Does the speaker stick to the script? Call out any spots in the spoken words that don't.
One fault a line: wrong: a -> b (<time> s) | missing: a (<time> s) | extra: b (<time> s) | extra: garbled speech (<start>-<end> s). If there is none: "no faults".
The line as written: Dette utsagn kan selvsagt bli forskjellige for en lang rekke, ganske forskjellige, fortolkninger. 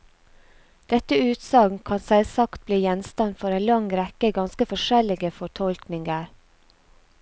wrong: forskjellige -> gjenstand (2.9 s)